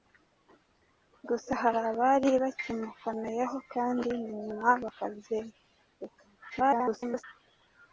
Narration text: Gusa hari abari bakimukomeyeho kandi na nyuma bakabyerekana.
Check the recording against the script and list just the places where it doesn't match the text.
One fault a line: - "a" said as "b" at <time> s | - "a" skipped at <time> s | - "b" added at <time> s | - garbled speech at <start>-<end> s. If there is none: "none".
- garbled speech at 6.5-7.2 s